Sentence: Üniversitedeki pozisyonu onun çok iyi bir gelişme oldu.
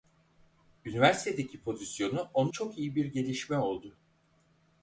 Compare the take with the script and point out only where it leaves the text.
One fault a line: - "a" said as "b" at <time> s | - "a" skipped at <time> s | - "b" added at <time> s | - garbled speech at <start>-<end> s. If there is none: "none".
none